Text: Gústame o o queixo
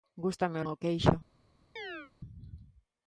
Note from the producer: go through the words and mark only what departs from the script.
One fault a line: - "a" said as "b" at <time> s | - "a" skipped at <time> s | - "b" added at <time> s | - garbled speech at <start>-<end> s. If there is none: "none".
none